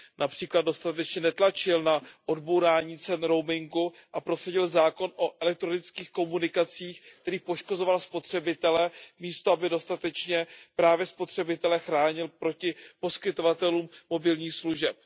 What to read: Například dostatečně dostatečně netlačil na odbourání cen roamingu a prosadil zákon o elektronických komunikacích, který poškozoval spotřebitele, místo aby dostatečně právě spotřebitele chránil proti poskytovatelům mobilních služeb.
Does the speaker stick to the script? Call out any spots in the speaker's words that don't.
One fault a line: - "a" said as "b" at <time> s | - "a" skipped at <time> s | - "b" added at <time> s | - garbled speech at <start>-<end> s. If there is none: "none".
- "dostatečně" skipped at 1.2 s